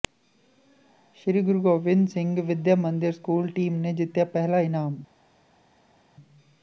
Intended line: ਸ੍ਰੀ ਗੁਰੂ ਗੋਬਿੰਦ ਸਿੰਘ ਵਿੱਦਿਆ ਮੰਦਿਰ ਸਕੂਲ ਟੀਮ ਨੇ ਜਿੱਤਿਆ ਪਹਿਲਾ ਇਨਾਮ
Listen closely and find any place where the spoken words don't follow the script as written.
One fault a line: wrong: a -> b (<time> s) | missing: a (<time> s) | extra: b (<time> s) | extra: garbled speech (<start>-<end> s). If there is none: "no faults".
no faults